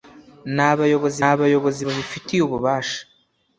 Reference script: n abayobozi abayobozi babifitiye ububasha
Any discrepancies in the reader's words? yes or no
no